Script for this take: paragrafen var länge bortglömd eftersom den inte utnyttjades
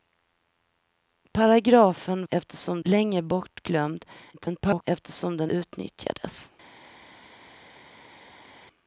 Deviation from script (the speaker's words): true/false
true